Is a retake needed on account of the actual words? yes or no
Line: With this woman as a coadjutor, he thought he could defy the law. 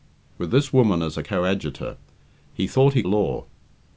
yes